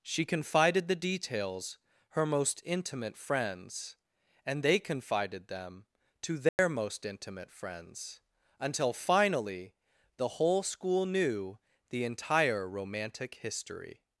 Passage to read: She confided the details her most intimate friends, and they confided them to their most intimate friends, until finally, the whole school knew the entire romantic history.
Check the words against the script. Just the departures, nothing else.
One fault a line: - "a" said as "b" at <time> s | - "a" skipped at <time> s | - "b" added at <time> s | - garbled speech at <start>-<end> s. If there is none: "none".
none